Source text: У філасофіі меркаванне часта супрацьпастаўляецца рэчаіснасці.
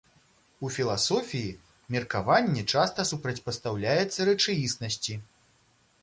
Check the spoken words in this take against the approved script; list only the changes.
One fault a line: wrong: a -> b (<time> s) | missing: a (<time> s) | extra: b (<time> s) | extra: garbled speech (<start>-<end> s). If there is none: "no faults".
no faults